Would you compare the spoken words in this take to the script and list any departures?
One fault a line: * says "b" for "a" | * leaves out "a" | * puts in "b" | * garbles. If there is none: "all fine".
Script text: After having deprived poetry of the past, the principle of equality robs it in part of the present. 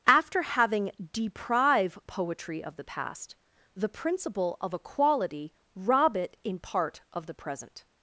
* says "deprive" for "deprived"
* says "rob" for "robs"